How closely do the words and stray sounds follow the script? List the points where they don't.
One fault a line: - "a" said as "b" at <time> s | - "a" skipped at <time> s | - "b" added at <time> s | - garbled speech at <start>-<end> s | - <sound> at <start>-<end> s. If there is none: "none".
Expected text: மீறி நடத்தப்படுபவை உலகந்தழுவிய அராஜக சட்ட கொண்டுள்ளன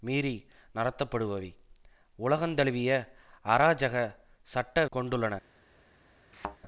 - thud at 6.3-6.6 s